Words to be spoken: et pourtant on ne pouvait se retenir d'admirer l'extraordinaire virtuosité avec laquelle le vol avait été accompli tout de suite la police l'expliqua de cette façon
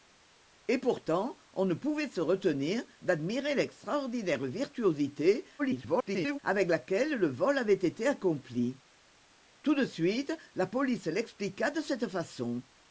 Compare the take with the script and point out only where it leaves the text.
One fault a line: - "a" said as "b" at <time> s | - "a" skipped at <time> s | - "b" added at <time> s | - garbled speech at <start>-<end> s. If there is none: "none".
- garbled speech at 5.6-6.4 s